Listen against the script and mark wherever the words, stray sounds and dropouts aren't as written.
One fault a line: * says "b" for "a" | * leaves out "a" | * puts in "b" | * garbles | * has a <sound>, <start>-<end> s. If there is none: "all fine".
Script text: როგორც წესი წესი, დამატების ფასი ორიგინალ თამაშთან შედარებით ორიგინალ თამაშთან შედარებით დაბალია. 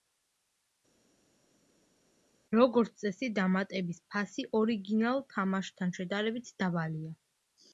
* leaves out "წესი"
* leaves out "ორიგინალ თამაშთან შედარებით"